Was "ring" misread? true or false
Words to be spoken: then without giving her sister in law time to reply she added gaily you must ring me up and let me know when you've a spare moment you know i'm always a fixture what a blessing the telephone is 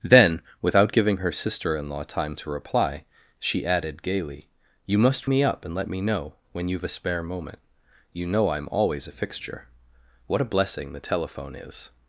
true